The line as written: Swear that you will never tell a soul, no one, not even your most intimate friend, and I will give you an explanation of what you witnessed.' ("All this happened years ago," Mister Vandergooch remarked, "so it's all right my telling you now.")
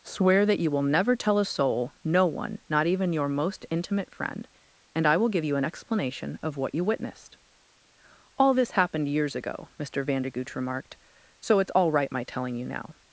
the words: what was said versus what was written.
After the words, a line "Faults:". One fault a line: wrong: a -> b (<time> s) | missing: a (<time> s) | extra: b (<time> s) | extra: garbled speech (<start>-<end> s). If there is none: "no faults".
Swear that you will never tell a soul, no one, not even your most intimate friend, and I will give you an explanation of what you witnessed.' ("All this happened years ago," Mister Vandergooch remarked, "so it's all right my telling you now.")
Faults:
no faults